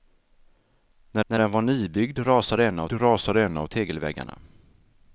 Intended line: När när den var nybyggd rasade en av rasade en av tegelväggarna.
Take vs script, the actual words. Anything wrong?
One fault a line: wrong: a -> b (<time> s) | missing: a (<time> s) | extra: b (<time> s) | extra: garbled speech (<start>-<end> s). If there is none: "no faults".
no faults